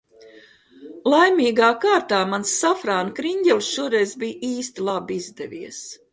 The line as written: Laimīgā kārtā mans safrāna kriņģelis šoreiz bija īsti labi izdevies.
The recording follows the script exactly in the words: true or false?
true